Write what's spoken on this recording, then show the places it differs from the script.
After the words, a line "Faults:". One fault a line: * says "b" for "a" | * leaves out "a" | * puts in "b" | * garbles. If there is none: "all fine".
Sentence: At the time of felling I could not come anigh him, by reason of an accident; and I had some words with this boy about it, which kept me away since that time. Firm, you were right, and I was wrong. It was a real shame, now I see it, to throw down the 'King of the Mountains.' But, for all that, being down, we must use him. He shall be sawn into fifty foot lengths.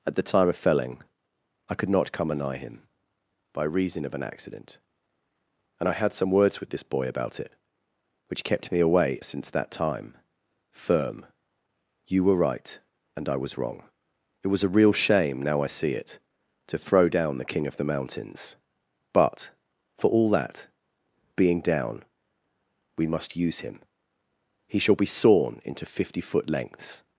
At the time of felling I could not come anigh him, by reason of an accident; and I had some words with this boy about it, which kept me away since that time. Firm, you were right, and I was wrong. It was a real shame, now I see it, to throw down the 'King of the Mountains.' But, for all that, being down, we must use him. He shall be sawn into fifty foot lengths.
Faults:
all fine